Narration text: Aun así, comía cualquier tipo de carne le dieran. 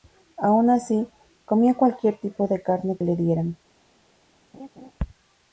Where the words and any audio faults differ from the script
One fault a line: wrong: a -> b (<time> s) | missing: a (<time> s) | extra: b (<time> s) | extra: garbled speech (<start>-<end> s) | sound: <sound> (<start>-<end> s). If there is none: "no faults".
sound: laugh (4.5-4.9 s)